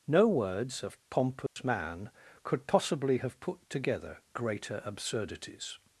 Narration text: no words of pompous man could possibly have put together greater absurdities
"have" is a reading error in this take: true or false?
false